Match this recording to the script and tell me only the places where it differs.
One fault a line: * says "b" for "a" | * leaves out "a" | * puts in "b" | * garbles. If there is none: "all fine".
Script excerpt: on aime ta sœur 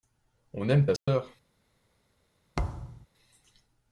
all fine